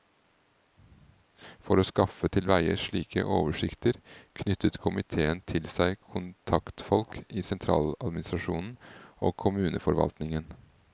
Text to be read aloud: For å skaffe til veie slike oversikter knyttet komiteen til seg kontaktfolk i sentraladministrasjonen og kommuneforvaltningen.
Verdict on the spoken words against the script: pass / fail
pass